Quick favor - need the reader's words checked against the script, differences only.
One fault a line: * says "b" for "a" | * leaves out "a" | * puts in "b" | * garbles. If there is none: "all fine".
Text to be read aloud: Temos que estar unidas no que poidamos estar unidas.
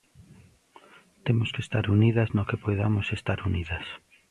all fine